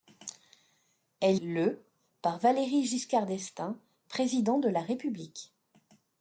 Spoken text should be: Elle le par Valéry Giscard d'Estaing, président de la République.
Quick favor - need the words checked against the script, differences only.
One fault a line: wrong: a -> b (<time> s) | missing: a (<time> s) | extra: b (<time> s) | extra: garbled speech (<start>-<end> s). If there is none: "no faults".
no faults